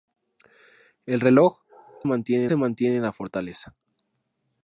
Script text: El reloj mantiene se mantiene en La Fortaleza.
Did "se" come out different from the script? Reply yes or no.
no